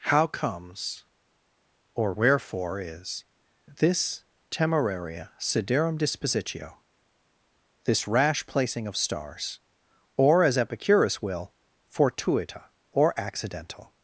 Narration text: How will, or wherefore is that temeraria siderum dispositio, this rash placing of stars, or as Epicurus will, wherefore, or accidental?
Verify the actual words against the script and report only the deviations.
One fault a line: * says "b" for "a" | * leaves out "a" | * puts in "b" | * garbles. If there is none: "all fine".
* says "comes" for "will"
* says "this" for "that"
* says "fortuita" for "wherefore"